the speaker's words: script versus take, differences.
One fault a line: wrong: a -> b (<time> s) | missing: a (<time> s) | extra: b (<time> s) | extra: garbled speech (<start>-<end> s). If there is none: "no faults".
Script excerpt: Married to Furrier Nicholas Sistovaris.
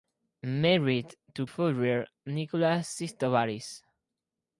no faults